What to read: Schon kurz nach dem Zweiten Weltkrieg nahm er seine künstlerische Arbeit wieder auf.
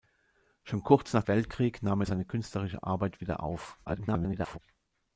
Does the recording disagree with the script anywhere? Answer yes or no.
yes